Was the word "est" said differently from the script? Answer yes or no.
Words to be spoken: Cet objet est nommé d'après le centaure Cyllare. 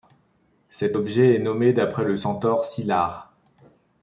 no